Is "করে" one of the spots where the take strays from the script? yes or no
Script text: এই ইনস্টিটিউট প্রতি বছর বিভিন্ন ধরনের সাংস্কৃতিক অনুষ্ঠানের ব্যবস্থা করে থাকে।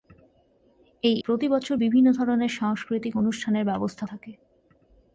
yes